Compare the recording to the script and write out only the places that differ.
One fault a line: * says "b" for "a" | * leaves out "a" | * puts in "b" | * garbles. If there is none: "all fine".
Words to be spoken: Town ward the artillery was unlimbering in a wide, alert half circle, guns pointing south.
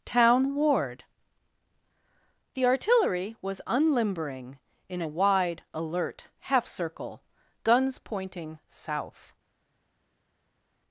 all fine